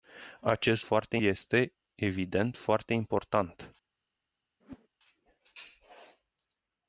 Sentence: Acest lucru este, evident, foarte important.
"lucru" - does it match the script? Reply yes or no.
no